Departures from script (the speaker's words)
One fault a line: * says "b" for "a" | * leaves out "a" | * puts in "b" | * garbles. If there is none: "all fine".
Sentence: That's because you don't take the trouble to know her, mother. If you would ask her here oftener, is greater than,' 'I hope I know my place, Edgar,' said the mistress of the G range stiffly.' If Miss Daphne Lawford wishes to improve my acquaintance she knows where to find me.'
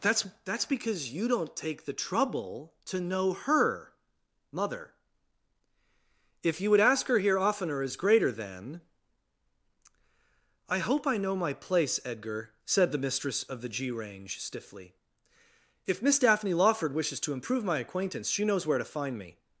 * puts in "That's"